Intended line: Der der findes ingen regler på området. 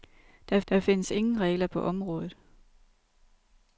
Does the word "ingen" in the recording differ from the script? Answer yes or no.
no